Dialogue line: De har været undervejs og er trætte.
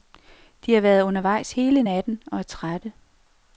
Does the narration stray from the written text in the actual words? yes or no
yes